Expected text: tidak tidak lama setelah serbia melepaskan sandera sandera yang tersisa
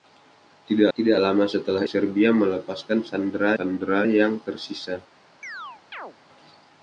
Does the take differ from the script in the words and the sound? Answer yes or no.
yes